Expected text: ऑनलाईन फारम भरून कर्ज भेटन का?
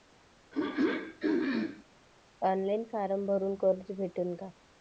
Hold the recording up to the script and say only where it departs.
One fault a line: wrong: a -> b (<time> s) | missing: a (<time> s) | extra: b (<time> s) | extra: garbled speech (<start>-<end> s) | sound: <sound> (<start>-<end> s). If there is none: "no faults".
sound: throat clearing (0.5-1.8 s)